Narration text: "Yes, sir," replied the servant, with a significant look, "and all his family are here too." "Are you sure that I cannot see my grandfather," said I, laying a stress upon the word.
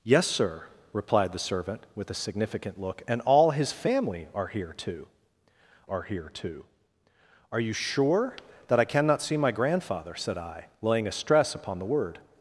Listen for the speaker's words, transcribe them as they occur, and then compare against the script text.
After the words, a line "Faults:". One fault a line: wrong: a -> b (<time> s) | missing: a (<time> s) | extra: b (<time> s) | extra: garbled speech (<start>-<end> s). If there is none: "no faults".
"Yes, sir," replied the servant, with a significant look, "and all his family are here too are here too." "Are you sure that I cannot see my grandfather," said I, laying a stress upon the word.
Faults:
extra: here too Are (6.0 s)